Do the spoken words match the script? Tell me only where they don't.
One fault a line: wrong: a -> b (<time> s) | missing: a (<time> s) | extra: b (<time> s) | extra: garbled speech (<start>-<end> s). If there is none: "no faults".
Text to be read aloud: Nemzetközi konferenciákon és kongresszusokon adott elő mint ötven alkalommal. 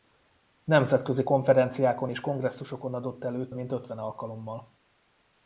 no faults